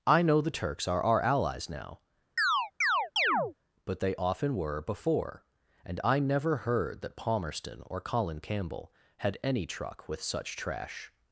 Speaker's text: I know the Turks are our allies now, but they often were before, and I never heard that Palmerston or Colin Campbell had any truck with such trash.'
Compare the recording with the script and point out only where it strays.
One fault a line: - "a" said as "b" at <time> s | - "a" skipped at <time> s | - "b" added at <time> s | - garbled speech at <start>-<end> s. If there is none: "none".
none